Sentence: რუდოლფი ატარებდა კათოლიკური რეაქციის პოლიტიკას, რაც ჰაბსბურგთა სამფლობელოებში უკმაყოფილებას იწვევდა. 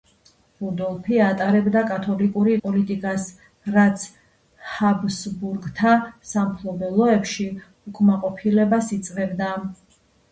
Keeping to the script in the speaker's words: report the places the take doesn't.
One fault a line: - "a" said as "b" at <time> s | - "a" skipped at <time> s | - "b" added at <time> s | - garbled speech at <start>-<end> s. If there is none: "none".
- "რეაქციის" skipped at 2.5 s